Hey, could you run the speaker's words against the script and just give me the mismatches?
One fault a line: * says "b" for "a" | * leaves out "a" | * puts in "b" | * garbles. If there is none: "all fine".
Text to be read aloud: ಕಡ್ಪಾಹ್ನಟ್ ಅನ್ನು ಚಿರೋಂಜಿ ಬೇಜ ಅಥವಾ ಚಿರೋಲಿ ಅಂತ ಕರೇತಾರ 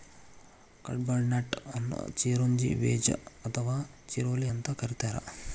all fine